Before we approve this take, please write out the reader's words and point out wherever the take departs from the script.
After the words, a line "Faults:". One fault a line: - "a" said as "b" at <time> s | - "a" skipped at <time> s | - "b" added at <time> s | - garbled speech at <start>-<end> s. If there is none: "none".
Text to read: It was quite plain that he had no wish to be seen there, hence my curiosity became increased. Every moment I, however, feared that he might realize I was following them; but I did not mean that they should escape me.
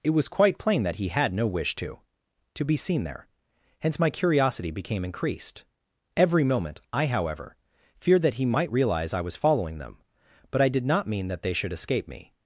It was quite plain that he had no wish to to be seen there, hence my curiosity became increased. Every moment I, however, feared that he might realize I was following them; but I did not mean that they should escape me.
Faults:
- "to" added at 2.5 s